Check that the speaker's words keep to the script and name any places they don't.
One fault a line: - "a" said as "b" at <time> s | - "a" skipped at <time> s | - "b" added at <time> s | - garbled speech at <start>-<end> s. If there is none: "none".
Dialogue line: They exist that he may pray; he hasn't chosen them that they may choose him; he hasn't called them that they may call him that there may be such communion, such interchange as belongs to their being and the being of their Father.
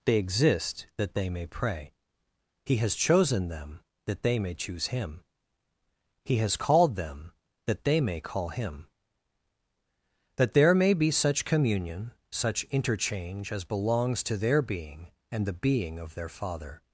- "he" said as "they" at 1.1 s
- "hasn't" said as "has" at 2.8 s
- "hasn't" said as "has" at 6.4 s